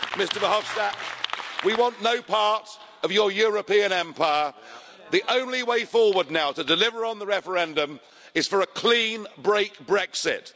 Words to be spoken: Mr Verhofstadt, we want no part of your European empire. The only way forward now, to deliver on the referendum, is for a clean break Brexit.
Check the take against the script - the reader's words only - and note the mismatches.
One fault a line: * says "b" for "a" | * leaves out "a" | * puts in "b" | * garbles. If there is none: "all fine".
all fine